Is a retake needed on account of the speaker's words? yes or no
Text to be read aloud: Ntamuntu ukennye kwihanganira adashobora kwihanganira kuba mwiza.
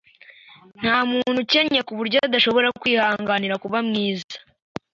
yes